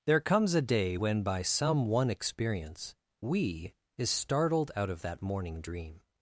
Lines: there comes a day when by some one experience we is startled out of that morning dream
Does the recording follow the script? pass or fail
pass